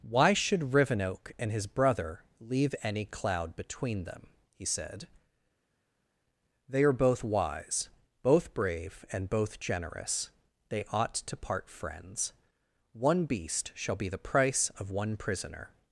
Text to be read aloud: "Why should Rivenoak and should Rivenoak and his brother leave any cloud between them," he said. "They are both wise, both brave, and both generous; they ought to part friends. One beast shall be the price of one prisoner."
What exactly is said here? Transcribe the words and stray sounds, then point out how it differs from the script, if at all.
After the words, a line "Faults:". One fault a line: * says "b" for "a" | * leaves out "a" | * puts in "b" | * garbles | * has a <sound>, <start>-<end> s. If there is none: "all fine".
"Why should Rivenoak and his brother leave any cloud between them," he said. "They are both wise, both brave, and both generous; they ought to part friends. One beast shall be the price of one prisoner."
Faults:
* leaves out "should Rivenoak and"